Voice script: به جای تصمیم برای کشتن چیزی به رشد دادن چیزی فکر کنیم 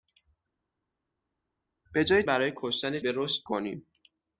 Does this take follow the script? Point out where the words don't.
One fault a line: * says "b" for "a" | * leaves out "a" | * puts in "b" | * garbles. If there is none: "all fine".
* leaves out "تصمیم"
* leaves out "چیزی"
* leaves out "دادن چیزی فکر"